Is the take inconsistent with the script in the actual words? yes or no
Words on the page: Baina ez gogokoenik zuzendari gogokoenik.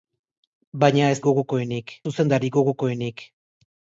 no